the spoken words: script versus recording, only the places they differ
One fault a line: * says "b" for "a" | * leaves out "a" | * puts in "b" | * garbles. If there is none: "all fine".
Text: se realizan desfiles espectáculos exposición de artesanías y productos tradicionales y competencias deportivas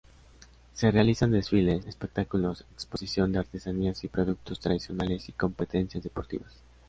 all fine